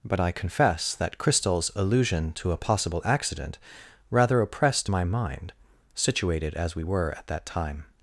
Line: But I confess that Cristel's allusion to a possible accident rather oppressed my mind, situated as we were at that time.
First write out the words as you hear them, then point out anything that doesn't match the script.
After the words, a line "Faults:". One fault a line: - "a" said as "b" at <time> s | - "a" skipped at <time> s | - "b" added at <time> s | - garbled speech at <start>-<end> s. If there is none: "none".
But I confess that Cristel's allusion to a possible accident rather oppressed my mind, situated as we were at that time.
Faults:
none